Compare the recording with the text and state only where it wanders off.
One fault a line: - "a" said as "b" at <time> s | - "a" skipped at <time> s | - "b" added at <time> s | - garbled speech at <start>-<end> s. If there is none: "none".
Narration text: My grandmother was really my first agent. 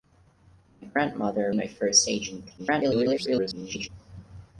- "was really" skipped at 1.5 s
- garbled speech at 2.6-3.9 s